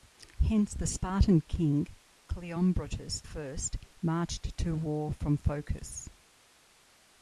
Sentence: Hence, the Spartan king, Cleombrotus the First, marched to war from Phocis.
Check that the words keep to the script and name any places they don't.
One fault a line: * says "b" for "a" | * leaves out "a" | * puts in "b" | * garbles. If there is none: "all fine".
* leaves out "the"